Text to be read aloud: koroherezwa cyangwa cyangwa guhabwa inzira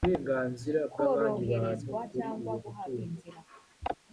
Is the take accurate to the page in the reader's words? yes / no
no